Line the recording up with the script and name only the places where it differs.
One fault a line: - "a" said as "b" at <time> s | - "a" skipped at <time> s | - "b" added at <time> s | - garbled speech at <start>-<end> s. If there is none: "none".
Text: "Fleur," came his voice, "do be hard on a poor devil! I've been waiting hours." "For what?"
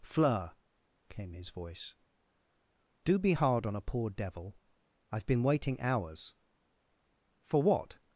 none